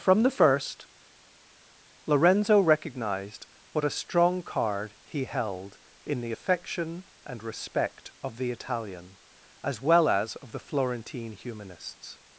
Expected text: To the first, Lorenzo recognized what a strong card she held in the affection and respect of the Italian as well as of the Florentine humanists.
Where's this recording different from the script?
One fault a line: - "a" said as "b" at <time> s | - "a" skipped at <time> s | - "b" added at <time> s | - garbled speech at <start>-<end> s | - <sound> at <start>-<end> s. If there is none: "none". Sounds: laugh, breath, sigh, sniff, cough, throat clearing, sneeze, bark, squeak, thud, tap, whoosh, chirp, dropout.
- "To" said as "From" at 0.0 s
- "she" said as "he" at 5.0 s